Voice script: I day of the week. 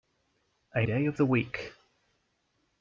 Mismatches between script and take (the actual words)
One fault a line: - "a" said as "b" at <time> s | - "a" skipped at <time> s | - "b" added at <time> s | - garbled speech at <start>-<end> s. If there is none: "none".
none